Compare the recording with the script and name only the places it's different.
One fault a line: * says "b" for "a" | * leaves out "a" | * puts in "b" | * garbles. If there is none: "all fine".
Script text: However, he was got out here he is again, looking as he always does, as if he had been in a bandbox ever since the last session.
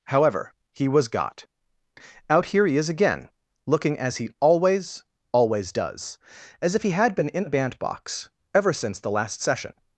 * puts in "always"